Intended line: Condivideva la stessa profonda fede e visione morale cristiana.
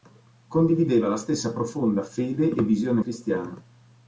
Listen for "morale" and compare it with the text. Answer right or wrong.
wrong